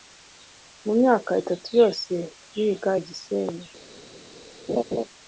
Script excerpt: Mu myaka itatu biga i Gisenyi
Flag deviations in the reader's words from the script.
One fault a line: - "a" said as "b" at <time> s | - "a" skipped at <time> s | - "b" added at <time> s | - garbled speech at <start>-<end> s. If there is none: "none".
- "yose" added at 1.8 s